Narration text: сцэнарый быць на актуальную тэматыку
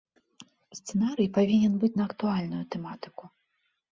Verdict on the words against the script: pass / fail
fail